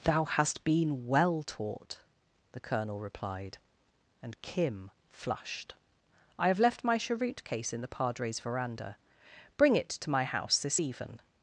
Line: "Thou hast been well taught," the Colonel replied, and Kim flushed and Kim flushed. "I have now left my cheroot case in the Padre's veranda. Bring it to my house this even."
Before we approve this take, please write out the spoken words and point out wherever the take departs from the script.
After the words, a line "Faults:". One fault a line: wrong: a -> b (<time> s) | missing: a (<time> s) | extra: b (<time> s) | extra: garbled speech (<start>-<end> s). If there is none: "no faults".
"Thou hast been well taught," the Colonel replied, and Kim flushed. "I have left my cheroot case in the Padre's veranda. Bring it to my house this even."
Faults:
missing: and Kim flushed (5.8 s)
missing: now (6.6 s)